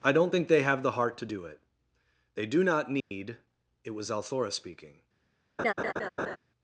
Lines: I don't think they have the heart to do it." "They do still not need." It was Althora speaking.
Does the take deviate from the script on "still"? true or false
true